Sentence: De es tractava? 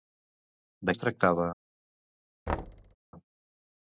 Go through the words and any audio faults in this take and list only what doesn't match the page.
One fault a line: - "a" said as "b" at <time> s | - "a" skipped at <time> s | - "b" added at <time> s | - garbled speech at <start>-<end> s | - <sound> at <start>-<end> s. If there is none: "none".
- thud at 2.5-3.0 s